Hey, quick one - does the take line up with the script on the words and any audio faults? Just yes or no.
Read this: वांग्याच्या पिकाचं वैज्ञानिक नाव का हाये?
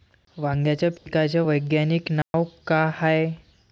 no